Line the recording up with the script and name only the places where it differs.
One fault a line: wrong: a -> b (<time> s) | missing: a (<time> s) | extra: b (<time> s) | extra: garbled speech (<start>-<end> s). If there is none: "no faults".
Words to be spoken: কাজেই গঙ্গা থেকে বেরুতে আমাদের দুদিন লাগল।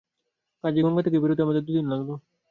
no faults